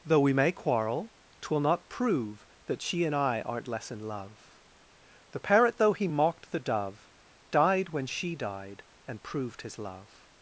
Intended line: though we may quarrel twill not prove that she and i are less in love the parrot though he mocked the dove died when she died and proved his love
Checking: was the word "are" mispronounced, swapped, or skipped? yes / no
yes